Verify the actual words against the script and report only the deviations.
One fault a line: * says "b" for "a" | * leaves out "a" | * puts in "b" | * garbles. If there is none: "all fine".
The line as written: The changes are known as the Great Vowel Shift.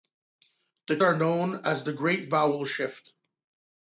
* leaves out "changes"